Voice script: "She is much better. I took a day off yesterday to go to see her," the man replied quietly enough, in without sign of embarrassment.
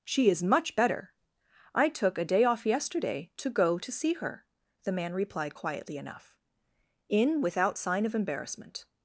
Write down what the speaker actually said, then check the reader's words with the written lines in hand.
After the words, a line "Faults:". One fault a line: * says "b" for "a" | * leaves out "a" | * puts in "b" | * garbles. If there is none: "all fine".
"She is much better. I took a day off yesterday to go to see her," the man replied quietly enough, in without sign of embarrassment.
Faults:
all fine